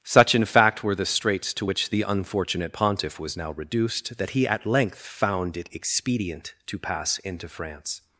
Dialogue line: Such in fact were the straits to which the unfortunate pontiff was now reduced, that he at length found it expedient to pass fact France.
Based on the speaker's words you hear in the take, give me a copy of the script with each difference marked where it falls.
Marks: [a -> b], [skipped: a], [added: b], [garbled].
Such in fact were the straits to which the unfortunate pontiff was now reduced, that he at length found it expedient to pass [fact -> into] France.